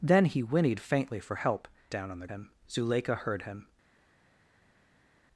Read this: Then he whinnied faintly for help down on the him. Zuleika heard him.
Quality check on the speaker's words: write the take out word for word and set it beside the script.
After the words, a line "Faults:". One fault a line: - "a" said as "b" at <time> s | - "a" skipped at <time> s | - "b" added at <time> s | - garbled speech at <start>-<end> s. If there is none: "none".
Then he whinnied faintly for help down on the him. Zuleika heard him.
Faults:
none